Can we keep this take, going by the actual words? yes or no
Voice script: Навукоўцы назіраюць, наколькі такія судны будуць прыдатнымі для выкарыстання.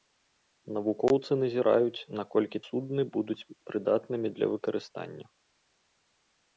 no